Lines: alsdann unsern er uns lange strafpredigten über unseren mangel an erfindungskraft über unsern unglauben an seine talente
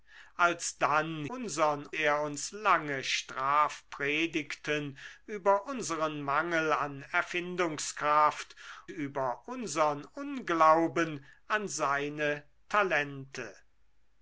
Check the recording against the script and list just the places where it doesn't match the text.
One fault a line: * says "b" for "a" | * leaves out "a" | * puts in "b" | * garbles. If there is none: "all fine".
all fine